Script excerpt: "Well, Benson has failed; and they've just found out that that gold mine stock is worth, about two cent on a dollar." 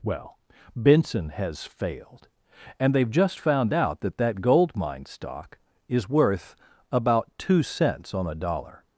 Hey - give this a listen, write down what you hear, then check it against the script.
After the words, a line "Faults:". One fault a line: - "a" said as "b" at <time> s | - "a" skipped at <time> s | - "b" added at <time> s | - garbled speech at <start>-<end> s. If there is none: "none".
"Well, Benson has failed; and they've just found out that that gold mine stock is worth, about two cents on a dollar."
Faults:
- "cent" said as "cents" at 7.6 s